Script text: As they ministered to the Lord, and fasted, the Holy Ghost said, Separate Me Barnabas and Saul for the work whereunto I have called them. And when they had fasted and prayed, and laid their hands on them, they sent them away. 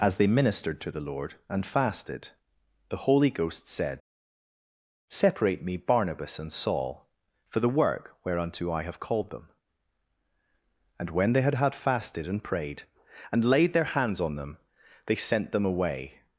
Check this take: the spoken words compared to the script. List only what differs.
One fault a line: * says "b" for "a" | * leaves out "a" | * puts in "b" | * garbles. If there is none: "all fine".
* puts in "had"